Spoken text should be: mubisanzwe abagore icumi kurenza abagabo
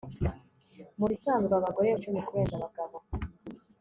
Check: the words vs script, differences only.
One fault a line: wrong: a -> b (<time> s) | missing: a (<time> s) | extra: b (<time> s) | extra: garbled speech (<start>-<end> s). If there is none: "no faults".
no faults